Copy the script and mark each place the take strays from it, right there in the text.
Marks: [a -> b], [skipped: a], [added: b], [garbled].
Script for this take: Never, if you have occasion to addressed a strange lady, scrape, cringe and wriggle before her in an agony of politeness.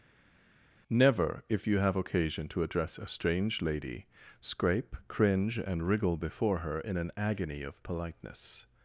Never, if you have occasion to [addressed -> address] a strange lady, scrape, cringe and wriggle before her in an agony of politeness.